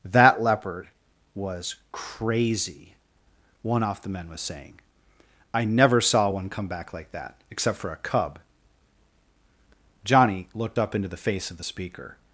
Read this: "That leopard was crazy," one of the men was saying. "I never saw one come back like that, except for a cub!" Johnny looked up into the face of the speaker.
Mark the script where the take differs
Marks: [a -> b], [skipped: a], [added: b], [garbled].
"That leopard was crazy," one [of -> off] the men was saying. "I never saw one come back like that, except for a cub!" Johnny looked up into the face of the speaker.